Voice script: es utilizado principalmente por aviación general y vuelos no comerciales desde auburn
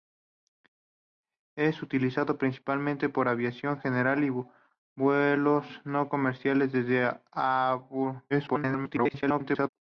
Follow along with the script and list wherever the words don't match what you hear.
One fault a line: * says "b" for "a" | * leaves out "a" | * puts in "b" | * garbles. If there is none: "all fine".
* garbles